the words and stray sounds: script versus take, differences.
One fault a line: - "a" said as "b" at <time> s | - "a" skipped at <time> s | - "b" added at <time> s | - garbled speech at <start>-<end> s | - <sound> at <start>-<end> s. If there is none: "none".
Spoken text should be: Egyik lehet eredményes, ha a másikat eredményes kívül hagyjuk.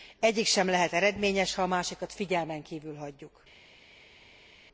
- "sem" added at 0.5 s
- "eredményes" said as "figyelmen" at 2.1 s